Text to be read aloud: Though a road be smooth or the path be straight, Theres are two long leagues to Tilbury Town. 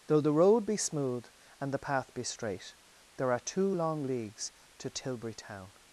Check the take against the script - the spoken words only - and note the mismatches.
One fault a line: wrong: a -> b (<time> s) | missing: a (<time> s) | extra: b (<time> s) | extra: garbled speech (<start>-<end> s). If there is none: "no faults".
wrong: a -> the (0.2 s)
wrong: or -> and (1.6 s)
wrong: Theres -> There (3.2 s)